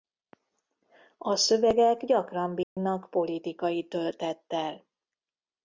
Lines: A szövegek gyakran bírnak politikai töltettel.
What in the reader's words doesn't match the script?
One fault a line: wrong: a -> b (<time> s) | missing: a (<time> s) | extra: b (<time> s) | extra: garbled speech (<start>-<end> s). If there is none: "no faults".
no faults